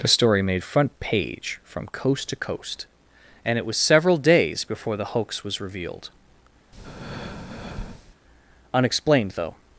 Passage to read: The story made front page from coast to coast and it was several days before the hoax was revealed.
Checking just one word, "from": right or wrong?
right